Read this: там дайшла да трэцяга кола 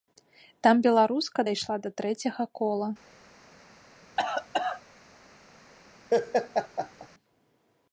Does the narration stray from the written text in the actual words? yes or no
yes